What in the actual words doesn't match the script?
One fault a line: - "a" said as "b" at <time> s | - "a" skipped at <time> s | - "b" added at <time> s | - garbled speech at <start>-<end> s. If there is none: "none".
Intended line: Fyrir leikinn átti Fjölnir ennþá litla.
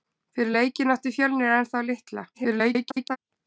- garbled speech at 2.3-3.2 s